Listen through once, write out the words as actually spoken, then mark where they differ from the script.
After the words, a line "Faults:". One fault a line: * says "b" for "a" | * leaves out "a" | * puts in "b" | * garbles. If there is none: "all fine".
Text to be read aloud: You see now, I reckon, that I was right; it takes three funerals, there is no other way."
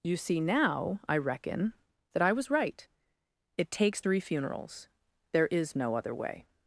You see now, I reckon, that I was right; it takes three funerals, there is no other way."
Faults:
all fine